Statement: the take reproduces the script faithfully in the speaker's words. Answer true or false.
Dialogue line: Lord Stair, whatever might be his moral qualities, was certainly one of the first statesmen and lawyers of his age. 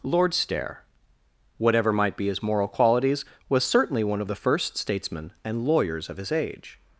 true